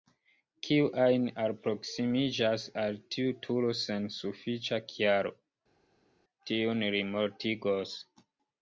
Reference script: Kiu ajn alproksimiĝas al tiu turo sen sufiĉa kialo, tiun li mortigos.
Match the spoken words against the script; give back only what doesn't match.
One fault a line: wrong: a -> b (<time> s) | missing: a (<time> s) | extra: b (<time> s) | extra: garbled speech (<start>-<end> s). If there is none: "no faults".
no faults